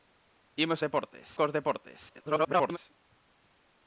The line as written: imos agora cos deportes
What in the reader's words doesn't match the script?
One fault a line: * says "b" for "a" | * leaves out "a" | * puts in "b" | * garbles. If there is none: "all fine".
* says "deportes" for "agora"
* garbles